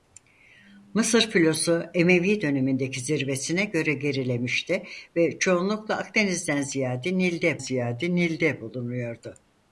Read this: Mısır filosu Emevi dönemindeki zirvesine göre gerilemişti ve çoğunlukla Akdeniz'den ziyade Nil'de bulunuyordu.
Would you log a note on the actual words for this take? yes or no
yes